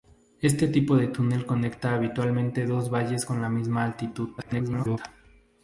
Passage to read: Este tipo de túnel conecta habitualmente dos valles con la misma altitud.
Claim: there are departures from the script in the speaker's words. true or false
true